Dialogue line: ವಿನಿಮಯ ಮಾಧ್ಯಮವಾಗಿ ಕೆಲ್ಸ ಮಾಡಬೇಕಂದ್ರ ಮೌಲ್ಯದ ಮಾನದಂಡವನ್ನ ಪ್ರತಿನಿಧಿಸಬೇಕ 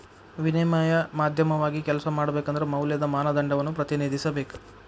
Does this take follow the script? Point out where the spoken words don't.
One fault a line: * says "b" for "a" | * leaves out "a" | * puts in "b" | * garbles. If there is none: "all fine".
all fine